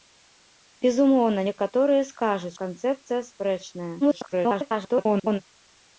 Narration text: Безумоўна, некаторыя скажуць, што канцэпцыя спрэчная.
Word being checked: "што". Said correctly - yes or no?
no